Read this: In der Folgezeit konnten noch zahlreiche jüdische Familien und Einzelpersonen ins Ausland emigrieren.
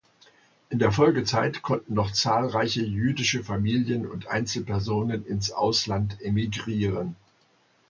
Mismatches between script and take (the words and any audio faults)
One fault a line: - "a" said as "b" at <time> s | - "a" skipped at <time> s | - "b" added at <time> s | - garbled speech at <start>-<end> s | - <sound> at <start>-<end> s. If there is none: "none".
none